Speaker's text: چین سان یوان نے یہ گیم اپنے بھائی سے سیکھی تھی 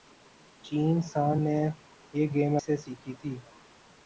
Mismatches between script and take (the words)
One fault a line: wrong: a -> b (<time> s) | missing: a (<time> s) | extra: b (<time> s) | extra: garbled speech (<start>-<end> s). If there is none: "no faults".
missing: یوان (1.4 s)
missing: اپنے بھائی (2.6 s)